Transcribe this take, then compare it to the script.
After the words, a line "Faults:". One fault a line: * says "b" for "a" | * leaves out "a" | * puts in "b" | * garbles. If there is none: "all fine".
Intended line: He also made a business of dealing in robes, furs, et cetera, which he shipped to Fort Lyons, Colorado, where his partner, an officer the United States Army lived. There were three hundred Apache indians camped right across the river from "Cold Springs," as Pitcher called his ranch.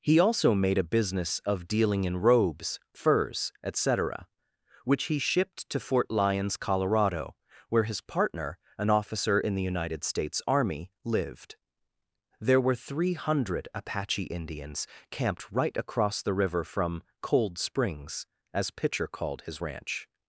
He also made a business of dealing in robes, furs, et cetera, which he shipped to Fort Lyons, Colorado, where his partner, an officer in the United States Army lived. There were three hundred Apache indians camped right across the river from "Cold Springs," as Pitcher called his ranch.
Faults:
* puts in "in"